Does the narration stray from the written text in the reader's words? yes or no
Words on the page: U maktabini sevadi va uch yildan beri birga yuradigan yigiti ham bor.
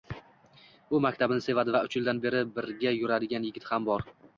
no